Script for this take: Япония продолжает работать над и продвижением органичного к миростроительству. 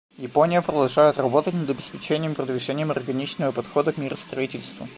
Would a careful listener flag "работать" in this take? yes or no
no